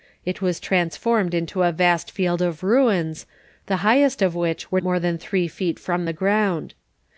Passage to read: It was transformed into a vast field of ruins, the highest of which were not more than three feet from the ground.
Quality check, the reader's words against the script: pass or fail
fail